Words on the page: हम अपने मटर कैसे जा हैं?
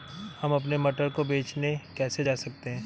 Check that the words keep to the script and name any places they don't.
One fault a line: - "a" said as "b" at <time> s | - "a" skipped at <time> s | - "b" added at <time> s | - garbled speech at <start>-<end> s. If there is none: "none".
- "को बेचने" added at 1.1 s
- "सकते" added at 2.4 s